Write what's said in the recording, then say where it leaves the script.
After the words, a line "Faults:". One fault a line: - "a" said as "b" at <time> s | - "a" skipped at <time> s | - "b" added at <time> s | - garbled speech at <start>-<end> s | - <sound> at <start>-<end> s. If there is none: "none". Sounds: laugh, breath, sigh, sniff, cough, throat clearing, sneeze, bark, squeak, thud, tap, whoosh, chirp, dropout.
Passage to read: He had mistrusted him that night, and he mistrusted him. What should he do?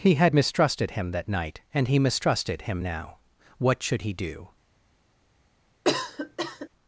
He had mistrusted him that night, and he mistrusted him now. What should he do?
Faults:
- "now" added at 2.8 s
- cough at 5.8-6.7 s